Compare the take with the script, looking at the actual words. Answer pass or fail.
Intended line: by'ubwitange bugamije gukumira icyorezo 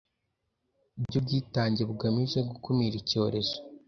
pass